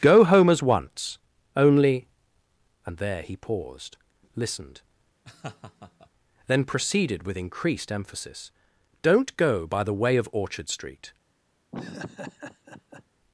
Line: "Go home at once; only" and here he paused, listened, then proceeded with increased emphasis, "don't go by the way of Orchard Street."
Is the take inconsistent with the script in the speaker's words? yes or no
yes